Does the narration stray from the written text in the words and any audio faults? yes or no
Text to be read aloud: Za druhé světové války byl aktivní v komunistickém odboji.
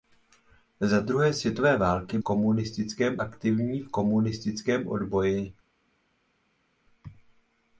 yes